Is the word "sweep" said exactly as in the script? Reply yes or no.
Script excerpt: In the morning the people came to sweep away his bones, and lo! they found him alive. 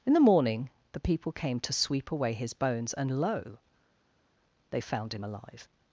yes